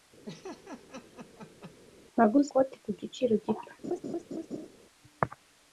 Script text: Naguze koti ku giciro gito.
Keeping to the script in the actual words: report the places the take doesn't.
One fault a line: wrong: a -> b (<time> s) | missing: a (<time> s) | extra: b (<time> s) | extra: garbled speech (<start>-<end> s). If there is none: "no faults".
no faults